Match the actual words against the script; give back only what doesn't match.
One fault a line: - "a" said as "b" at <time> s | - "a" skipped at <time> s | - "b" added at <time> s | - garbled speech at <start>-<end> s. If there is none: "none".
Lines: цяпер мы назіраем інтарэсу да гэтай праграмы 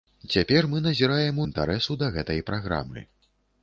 none